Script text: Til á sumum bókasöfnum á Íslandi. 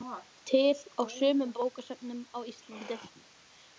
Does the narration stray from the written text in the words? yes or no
no